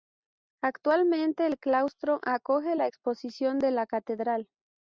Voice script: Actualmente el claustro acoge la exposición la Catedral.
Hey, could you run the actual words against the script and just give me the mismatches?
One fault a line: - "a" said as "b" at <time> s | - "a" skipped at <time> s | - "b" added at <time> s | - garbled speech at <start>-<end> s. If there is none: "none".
- "de" added at 3.6 s